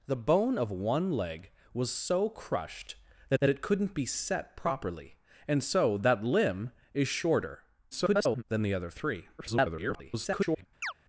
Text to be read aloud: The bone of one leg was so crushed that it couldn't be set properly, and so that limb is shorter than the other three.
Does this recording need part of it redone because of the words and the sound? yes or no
yes